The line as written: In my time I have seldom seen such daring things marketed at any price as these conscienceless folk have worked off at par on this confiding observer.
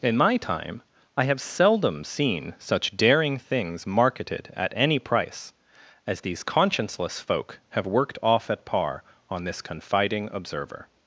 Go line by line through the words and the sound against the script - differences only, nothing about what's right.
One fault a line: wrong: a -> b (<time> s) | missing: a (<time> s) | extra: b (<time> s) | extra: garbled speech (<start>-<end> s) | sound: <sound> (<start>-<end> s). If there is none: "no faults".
no faults